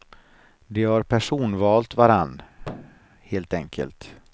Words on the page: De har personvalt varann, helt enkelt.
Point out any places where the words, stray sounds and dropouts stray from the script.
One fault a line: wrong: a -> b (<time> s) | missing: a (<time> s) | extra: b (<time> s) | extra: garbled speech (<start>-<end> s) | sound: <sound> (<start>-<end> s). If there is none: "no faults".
sound: thud (2.6-3.1 s)